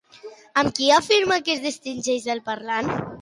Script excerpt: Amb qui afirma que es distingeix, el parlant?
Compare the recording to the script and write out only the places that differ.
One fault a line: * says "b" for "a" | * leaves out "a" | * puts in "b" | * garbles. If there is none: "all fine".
all fine